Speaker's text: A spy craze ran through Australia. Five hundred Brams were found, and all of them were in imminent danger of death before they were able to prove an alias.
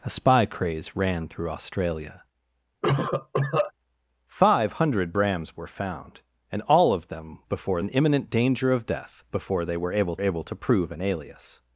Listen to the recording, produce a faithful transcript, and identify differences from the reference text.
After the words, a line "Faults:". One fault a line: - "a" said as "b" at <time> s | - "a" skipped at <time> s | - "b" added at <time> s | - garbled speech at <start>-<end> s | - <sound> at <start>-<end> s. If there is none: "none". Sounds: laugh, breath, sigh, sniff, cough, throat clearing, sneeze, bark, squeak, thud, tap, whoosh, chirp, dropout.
A spy craze ran through Australia. Five hundred Brams were found, and all of them before in imminent danger of death before they were able able to prove an alias.
Faults:
- cough at 2.8-3.7 s
- "were" said as "before" at 7.5 s
- "able" added at 10.2 s